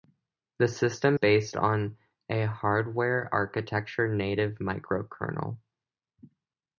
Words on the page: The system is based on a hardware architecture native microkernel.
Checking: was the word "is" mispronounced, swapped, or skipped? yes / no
yes